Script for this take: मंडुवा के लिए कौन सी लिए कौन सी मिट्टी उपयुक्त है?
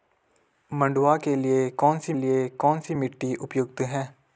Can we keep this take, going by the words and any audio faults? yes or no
yes